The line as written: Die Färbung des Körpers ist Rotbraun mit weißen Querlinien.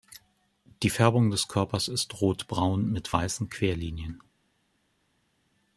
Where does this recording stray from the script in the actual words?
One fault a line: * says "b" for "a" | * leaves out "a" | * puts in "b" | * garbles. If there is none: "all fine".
all fine